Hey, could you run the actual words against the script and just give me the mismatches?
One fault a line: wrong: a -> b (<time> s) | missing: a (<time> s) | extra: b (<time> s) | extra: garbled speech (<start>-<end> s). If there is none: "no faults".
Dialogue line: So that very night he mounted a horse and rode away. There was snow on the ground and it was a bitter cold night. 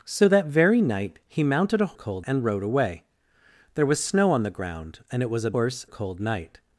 wrong: horse -> cold (1.9 s)
wrong: bitter -> horse (5.5 s)